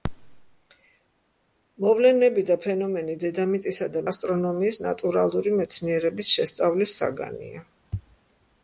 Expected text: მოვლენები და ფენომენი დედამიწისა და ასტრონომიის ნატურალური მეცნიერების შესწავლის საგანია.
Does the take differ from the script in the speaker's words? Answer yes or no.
no